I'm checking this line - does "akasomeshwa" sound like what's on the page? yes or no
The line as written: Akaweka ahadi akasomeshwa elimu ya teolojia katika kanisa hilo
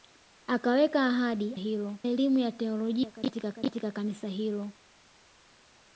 no